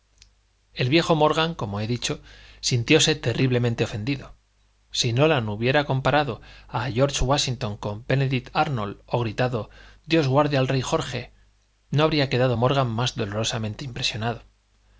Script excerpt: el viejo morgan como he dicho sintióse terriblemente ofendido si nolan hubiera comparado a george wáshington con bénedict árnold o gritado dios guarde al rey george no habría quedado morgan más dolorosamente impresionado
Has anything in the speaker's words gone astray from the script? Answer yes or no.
no